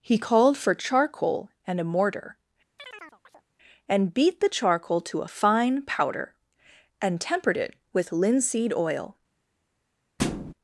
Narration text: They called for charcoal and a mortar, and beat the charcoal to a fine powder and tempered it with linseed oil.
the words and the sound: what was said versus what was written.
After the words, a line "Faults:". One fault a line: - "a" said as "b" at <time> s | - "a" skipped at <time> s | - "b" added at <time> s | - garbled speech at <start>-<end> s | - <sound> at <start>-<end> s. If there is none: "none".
He called for charcoal and a mortar, and beat the charcoal to a fine powder and tempered it with linseed oil.
Faults:
- "They" said as "He" at 0.0 s
- chirp at 2.8-3.4 s
- thud at 10.2-10.5 s